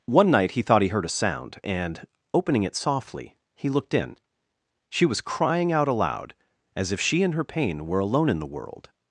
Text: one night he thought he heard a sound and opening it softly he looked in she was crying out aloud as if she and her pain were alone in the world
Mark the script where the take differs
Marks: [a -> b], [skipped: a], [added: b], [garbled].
one night he thought he heard a sound and opening it softly he looked in she was crying out aloud as if she and her pain were alone in the world